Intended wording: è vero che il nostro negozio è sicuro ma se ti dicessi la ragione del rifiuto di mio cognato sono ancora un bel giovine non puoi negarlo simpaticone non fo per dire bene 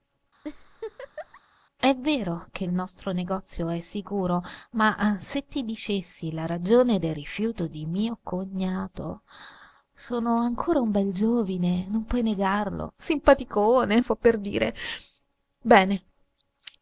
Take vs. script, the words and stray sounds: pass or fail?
fail